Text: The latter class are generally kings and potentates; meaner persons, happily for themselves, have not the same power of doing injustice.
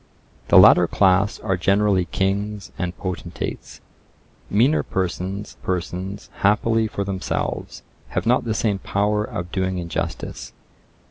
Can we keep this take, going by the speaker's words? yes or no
no